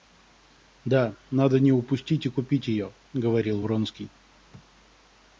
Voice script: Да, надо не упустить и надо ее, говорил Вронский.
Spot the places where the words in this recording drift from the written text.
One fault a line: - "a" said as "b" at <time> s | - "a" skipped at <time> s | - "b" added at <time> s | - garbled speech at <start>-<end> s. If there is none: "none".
- "надо" said as "купить" at 2.3 s